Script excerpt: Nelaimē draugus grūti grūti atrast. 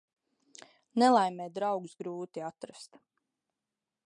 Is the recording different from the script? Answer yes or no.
yes